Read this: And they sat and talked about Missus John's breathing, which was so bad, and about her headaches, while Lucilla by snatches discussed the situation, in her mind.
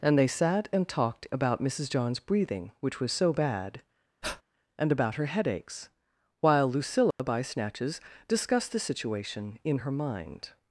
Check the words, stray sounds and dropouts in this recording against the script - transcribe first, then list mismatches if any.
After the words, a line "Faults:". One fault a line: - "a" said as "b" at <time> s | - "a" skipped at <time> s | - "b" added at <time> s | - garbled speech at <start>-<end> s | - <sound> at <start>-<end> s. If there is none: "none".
And they sat and talked about Missus John's breathing, which was so bad, and about her headaches, while Lucilla by snatches discussed the situation, in her mind.
Faults:
- breath at 4.2-4.4 s
- dropout at 7.1-7.2 s